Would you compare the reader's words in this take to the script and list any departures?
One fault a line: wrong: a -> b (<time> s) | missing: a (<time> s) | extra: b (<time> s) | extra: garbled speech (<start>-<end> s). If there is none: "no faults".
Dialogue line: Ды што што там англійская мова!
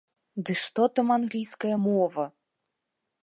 missing: што (0.9 s)